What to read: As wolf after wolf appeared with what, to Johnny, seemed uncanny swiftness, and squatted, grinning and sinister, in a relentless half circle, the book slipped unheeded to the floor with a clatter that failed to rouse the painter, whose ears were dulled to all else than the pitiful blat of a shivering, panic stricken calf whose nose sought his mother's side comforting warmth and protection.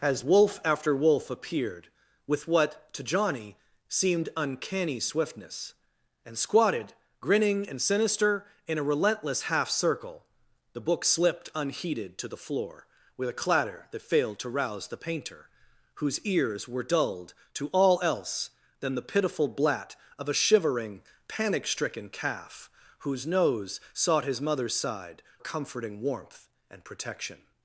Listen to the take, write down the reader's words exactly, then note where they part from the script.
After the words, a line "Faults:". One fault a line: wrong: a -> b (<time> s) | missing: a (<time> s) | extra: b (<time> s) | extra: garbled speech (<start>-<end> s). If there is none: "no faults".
As wolf after wolf appeared with what, to Johnny, seemed uncanny swiftness, and squatted, grinning and sinister, in a relentless half circle, the book slipped unheeded to the floor with a clatter that failed to rouse the painter, whose ears were dulled to all else than the pitiful blat of a shivering, panic stricken calf whose nose sought his mother's side comforting warmth and protection.
Faults:
no faults